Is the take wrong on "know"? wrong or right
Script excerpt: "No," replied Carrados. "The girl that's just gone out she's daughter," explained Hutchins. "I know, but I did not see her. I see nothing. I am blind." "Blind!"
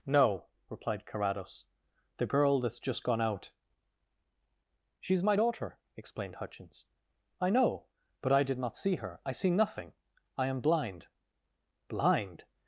right